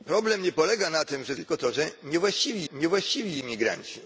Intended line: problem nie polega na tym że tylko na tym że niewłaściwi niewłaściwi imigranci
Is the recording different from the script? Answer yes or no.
no